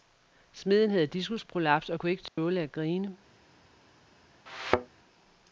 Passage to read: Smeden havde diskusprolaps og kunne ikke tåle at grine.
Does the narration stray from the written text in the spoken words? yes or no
no